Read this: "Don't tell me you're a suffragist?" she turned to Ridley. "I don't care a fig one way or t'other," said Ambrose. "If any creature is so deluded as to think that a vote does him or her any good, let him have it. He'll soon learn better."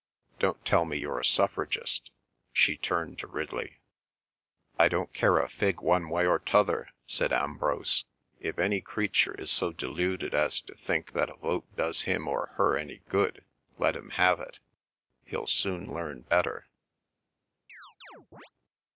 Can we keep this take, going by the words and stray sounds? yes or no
no